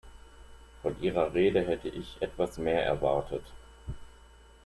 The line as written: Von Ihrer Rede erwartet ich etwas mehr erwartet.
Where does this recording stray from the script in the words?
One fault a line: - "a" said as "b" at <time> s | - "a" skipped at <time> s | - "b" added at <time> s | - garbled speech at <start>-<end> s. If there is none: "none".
- "erwartet" said as "hätte" at 1.6 s